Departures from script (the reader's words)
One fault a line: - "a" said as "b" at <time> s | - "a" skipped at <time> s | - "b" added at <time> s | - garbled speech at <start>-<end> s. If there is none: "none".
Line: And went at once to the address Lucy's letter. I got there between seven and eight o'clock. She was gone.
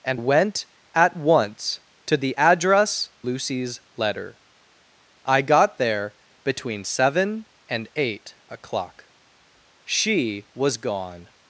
none